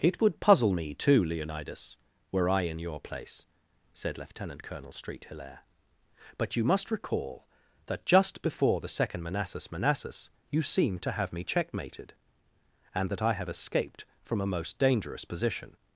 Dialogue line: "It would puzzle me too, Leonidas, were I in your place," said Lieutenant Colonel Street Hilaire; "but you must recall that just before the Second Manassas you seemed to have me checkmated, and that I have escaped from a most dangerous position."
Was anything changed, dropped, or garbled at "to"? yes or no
no